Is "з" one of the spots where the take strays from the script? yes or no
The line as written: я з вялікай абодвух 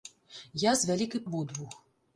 no